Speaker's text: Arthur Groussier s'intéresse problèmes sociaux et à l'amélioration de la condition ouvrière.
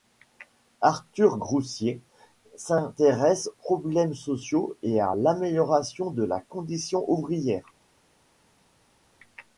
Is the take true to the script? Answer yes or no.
yes